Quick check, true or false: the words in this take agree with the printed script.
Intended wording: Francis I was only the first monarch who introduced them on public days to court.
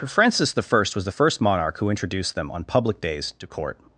false